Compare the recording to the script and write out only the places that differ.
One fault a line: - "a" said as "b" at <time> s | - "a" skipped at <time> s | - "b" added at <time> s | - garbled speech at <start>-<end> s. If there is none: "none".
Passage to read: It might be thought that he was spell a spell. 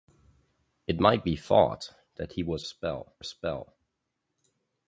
none